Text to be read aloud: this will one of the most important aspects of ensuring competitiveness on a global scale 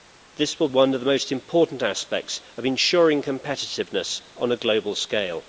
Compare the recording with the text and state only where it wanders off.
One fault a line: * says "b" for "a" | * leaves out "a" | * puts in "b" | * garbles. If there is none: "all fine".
all fine